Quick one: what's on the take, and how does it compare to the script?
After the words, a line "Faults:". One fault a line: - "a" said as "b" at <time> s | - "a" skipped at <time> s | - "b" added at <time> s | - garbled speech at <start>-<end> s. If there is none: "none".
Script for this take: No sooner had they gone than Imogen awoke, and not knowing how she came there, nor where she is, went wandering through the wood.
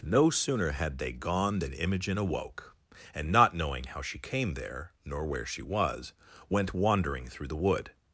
No sooner had they gone than Imogen awoke, and not knowing how she came there, nor where she was, went wandering through the wood.
Faults:
- "is" said as "was" at 5.6 s